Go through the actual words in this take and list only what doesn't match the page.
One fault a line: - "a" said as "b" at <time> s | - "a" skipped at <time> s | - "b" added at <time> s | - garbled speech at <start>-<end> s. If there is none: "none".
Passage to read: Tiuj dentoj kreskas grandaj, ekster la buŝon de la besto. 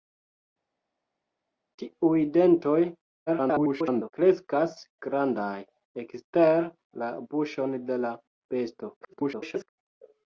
- garbled speech at 3.3-4.1 s
- garbled speech at 9.0-9.7 s